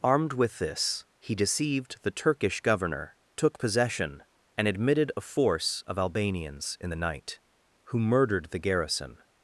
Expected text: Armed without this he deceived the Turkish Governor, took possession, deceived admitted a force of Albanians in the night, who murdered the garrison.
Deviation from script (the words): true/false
true